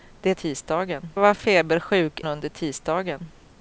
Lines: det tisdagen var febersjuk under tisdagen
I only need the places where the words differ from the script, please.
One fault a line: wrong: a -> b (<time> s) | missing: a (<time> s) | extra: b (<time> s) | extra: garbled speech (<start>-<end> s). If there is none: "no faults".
no faults